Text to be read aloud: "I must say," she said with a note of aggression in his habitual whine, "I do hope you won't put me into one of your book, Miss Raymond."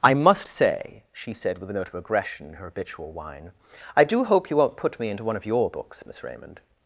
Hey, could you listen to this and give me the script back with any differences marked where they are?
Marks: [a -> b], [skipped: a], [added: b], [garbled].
"I must say," she said with a note of aggression in [his -> her] habitual whine, "I do hope you won't put me into one of your [book, -> books] Miss Raymond."